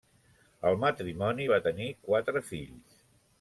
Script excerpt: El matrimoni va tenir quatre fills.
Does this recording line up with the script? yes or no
yes